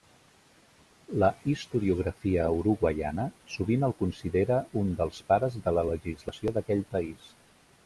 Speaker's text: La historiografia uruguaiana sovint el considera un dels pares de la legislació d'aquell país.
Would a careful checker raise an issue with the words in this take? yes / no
no